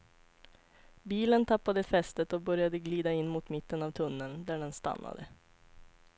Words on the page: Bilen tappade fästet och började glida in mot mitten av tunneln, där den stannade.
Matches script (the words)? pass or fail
pass